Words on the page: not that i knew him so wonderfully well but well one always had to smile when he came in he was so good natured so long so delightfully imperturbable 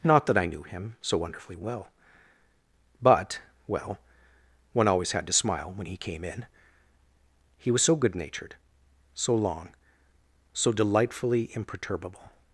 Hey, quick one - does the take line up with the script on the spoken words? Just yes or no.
yes